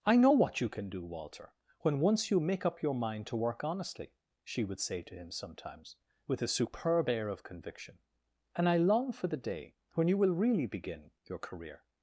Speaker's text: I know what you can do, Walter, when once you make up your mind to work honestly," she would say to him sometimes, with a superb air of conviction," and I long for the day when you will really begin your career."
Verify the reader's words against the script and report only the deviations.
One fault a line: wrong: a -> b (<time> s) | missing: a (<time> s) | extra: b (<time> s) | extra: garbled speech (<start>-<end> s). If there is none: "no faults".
no faults